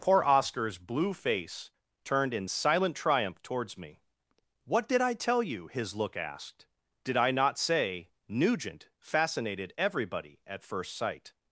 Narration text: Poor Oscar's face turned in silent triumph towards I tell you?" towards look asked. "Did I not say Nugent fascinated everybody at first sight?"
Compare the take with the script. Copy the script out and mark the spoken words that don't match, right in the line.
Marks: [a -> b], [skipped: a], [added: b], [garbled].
Poor Oscar's [added: blue] face turned in silent triumph towards [added: me What did] I tell you?" [towards -> his] look asked. "Did I not say Nugent fascinated everybody at first sight?"